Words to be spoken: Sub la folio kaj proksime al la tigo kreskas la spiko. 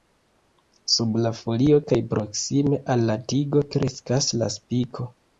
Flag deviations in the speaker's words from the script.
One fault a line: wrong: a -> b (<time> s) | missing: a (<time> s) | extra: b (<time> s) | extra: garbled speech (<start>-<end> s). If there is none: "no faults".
no faults